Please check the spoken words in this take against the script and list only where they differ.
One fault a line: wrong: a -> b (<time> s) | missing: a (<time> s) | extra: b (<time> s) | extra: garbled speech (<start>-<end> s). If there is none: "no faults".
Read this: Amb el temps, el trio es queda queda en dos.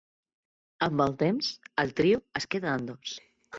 missing: queda (2.8 s)